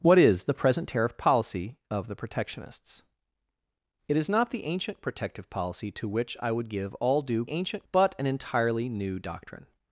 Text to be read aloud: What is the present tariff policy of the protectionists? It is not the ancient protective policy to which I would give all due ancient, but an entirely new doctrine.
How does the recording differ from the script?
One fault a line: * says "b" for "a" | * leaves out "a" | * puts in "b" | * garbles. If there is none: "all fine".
all fine